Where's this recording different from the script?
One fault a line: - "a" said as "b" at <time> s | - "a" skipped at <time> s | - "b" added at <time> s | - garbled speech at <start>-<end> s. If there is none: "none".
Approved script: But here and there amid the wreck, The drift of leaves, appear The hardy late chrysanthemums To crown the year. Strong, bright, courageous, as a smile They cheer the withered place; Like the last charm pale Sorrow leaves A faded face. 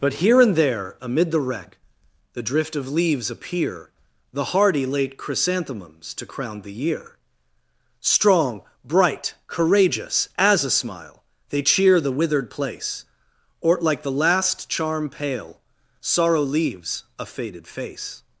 - "or" added at 13.6 s